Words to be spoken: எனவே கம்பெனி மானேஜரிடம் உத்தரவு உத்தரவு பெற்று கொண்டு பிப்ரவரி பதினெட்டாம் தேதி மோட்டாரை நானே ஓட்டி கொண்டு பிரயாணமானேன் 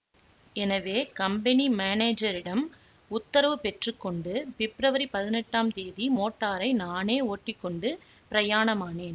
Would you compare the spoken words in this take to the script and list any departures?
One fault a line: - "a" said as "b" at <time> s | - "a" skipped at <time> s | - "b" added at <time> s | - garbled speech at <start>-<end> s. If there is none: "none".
- "உத்தரவு" skipped at 3.5 s